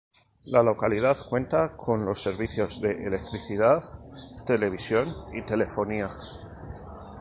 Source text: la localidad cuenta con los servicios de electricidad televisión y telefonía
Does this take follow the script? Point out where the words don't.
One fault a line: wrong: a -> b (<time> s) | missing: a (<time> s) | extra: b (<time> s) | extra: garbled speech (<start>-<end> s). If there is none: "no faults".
no faults